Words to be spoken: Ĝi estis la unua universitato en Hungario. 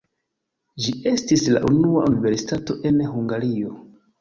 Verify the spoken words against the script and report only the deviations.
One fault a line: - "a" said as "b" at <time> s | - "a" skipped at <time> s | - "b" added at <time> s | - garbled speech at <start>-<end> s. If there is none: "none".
none